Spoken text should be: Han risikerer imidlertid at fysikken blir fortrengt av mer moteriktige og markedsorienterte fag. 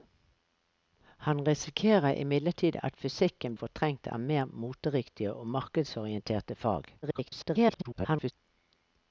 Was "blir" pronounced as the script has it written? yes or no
no